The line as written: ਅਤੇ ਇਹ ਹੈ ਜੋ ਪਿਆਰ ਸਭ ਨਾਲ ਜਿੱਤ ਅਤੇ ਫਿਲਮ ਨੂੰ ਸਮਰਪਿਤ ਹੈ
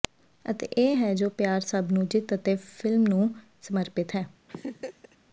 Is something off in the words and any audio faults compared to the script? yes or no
yes